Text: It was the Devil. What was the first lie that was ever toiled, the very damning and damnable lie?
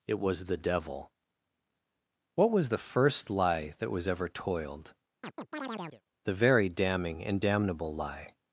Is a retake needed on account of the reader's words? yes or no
no